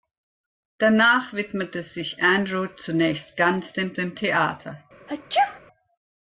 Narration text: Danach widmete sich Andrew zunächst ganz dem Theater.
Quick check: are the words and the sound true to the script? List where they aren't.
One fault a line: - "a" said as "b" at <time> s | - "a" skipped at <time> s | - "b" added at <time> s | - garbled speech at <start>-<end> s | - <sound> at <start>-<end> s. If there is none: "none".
- "dem" added at 3.9 s
- sneeze at 5.1-5.6 s